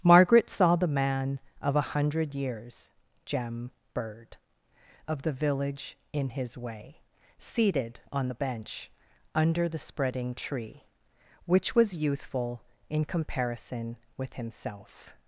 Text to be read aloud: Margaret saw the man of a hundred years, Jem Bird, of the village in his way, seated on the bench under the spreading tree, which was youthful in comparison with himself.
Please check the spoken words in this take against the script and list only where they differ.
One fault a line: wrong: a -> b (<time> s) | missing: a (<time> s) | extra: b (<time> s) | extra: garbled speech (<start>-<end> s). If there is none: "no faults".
no faults